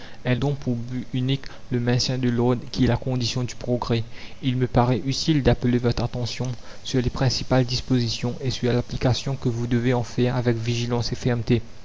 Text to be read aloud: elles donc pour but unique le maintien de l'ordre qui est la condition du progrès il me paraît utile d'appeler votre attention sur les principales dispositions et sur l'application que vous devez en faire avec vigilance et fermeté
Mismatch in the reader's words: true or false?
false